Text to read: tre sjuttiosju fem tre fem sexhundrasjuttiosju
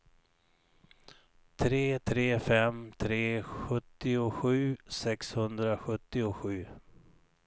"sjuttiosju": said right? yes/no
no